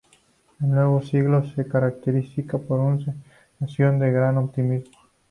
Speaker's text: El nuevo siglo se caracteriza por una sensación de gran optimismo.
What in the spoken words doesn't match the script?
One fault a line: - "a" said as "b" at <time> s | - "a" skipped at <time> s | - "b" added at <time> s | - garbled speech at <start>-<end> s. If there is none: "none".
none